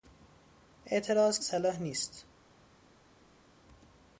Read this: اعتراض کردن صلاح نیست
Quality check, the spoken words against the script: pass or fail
fail